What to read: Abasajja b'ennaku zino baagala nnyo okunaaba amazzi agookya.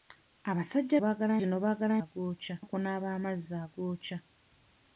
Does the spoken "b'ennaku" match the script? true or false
false